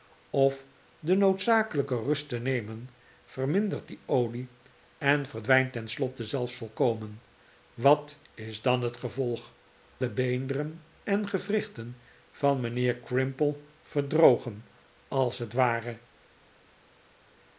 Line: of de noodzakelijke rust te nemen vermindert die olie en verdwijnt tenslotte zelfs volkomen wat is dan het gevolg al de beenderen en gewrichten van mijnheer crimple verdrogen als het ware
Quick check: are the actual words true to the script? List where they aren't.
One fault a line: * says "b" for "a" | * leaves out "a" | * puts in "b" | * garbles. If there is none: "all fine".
* leaves out "al"